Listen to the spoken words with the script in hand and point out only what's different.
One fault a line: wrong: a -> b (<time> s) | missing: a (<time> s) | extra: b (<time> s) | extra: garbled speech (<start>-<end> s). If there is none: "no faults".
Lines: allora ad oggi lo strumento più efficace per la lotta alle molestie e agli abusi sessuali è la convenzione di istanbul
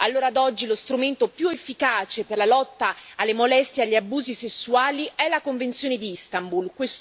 no faults